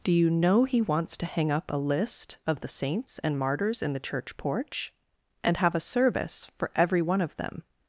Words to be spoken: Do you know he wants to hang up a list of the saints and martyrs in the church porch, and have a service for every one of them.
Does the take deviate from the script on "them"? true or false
false